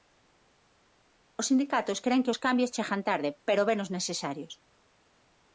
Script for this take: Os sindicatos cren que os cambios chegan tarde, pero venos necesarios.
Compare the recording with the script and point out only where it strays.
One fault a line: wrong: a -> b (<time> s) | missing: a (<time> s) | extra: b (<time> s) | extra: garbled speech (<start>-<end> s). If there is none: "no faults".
no faults